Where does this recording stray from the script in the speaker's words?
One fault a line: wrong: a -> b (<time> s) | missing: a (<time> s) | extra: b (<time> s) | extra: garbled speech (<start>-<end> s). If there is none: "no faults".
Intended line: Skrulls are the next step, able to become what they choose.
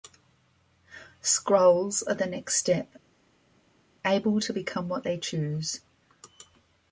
no faults